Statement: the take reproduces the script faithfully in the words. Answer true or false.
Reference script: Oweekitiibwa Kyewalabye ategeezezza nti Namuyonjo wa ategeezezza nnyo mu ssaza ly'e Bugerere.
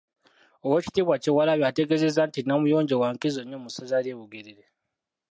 false